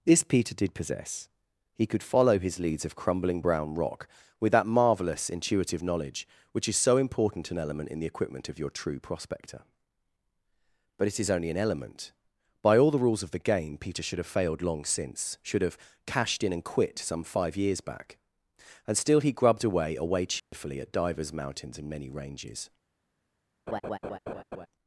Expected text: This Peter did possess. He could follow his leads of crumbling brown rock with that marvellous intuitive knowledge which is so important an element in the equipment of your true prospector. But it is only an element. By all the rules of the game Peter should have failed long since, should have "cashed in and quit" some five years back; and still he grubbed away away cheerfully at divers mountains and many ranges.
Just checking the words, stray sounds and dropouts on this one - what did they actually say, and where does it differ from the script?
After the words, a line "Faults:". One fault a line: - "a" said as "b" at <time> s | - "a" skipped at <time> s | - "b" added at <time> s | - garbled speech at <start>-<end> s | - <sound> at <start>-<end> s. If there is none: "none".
This Peter did possess. He could follow his leads of crumbling brown rock with that marvellous intuitive knowledge which is so important an element in the equipment of your true prospector. But it is only an element. By all the rules of the game Peter should have failed long since, should have "cashed in and quit" some five years back; and still he grubbed away away cheerfully at divers mountains and many ranges.
Faults:
- dropout at 20.4-20.5 s
- laugh at 23.7-24.7 s